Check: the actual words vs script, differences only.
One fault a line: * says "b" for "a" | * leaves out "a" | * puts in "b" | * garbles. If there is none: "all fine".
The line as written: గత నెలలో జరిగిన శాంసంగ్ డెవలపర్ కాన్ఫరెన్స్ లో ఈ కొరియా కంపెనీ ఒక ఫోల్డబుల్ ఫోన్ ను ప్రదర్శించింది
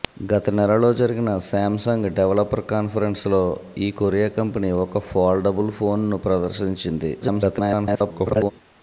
* garbles